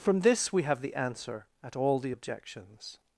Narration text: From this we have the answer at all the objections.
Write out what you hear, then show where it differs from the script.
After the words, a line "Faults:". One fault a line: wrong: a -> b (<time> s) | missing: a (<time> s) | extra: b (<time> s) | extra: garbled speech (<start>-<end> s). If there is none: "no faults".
From this we have the answer at all the objections.
Faults:
no faults